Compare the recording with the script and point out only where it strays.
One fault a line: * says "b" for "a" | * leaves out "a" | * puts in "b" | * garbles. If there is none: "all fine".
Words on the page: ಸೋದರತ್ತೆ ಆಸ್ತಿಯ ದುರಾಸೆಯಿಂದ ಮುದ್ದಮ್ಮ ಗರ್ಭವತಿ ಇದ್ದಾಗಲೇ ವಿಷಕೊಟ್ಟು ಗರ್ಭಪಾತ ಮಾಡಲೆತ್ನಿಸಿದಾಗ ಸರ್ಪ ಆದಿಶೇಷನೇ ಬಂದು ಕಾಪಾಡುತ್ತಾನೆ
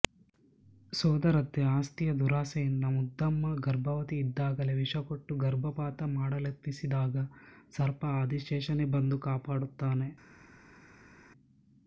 all fine